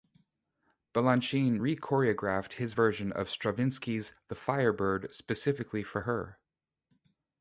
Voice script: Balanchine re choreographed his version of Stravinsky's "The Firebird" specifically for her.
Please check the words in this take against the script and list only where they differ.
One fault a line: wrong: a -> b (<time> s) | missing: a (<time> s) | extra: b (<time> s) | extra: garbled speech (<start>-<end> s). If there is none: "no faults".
no faults